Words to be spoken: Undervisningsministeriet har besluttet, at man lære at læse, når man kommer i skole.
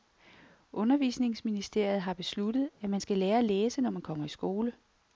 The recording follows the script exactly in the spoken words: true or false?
false